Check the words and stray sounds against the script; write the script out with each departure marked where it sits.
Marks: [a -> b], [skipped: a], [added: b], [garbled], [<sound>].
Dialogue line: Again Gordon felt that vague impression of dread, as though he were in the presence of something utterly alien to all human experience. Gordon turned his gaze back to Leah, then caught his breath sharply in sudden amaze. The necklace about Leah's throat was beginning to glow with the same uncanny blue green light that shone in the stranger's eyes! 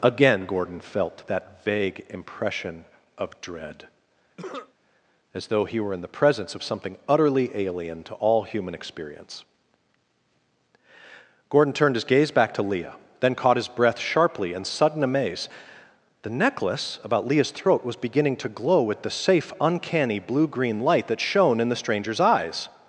Again Gordon felt that vague impression of dread, [cough] as though he were in the presence of something utterly alien to all human experience. Gordon turned his gaze back to Leah, then caught his breath sharply in sudden amaze. The necklace about Leah's throat was beginning to glow with the [same -> safe] uncanny blue green light that shone in the stranger's eyes!